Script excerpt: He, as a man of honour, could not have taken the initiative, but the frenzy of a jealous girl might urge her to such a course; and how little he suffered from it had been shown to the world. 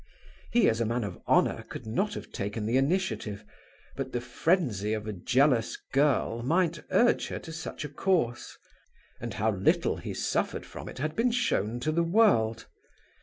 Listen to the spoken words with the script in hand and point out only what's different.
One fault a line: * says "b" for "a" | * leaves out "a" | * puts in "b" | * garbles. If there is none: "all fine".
all fine